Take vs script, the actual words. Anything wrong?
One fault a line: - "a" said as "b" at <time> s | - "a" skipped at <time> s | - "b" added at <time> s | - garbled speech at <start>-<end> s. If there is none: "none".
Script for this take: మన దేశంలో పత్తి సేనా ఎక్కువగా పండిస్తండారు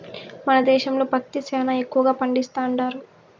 none